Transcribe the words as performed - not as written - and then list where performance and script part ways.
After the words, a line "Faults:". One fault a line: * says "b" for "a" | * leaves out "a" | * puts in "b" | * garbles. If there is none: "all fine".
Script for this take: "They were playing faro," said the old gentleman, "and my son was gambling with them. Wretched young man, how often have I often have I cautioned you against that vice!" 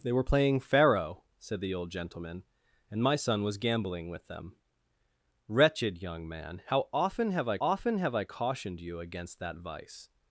"They were playing faro," said the old gentleman, "and my son was gambling with them. Wretched young man, how often have I often have I cautioned you against that vice!"
Faults:
all fine